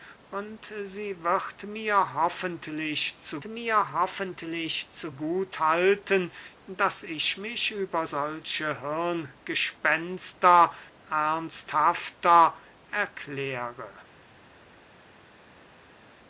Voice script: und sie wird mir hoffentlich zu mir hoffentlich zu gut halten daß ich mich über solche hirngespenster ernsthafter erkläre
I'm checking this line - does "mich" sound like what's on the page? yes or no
yes